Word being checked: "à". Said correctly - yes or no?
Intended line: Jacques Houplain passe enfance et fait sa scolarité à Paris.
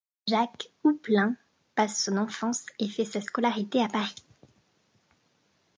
yes